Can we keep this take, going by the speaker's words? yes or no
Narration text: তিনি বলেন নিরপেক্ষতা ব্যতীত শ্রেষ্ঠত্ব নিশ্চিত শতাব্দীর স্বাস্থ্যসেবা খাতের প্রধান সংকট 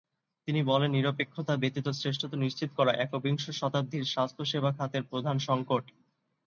no